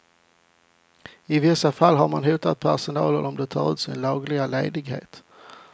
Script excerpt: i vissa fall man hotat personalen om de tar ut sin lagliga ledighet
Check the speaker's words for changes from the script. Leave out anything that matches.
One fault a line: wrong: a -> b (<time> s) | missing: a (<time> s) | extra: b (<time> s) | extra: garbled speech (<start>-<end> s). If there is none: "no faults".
extra: har (1.9 s)